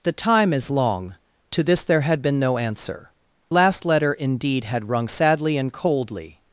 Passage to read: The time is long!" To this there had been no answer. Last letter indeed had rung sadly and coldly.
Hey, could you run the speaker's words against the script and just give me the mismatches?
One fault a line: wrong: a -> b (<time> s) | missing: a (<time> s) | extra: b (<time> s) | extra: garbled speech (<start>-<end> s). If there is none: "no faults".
no faults